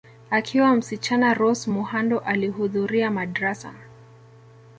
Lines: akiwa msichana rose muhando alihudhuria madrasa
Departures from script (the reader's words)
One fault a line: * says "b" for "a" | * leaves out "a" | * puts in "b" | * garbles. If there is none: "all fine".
all fine